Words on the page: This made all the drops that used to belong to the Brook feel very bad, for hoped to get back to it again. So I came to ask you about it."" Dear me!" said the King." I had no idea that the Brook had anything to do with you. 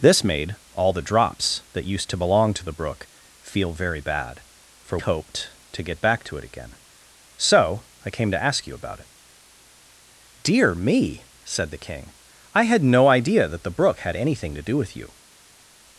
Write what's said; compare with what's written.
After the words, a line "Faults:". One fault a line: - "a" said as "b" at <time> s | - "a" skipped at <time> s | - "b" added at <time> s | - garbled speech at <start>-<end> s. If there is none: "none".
This made all the drops that used to belong to the Brook feel very bad, for hoped to get back to it again. So I came to ask you about it."" Dear me!" said the King." I had no idea that the Brook had anything to do with you.
Faults:
none